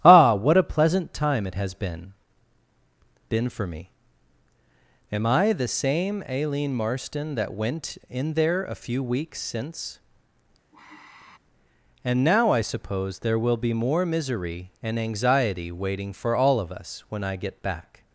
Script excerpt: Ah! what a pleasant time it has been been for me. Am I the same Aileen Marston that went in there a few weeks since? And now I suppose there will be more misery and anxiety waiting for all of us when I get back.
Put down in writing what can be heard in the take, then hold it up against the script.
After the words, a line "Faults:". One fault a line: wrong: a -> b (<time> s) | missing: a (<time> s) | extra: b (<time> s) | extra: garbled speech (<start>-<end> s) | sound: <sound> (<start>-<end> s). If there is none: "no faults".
Ah! what a pleasant time it has been been for me. Am I the same Aileen Marston that went in there a few weeks since? And now I suppose there will be more misery and anxiety waiting for all of us when I get back.
Faults:
sound: sigh (10.7-11.4 s)